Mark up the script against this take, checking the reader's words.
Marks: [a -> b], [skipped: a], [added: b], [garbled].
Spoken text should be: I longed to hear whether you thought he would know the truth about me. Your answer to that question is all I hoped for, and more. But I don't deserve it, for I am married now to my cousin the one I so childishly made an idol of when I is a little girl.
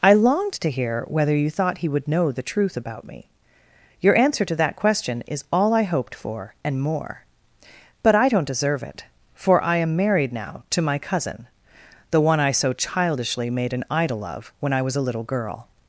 I longed to hear whether you thought he would know the truth about me. Your answer to that question is all I hoped for, and more. But I don't deserve it, for I am married now to my cousin the one I so childishly made an idol of when I [is -> was] a little girl.